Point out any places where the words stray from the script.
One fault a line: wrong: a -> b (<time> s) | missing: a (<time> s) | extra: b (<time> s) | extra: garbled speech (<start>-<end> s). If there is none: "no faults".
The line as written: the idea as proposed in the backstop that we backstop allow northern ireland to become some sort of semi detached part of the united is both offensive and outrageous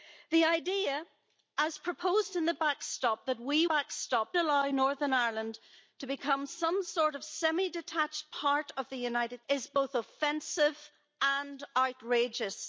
no faults